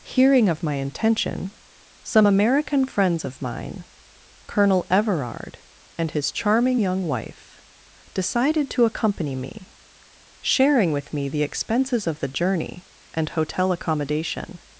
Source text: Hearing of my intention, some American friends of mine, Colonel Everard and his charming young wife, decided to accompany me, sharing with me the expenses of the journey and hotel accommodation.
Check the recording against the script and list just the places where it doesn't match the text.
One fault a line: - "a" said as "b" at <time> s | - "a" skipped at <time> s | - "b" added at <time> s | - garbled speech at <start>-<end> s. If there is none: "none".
none